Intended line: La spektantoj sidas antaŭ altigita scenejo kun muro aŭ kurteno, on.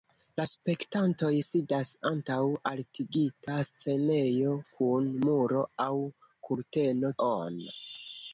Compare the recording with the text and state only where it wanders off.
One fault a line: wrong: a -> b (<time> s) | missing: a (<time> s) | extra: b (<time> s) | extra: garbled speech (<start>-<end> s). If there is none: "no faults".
no faults